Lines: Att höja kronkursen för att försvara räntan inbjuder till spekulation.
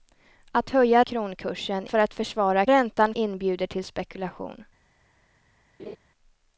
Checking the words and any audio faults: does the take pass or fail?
fail